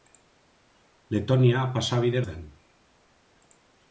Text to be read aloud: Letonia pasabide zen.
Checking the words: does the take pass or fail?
pass